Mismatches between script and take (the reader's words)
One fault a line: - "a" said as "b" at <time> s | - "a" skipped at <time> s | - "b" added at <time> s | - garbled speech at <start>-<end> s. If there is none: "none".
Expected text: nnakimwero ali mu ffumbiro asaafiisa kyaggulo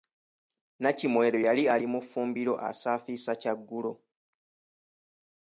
- "yali" added at 1.5 s